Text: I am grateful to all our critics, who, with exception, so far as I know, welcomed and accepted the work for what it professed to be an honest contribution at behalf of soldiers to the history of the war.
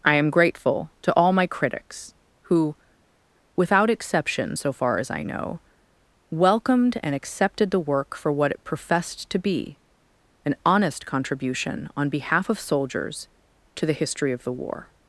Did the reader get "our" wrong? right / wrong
wrong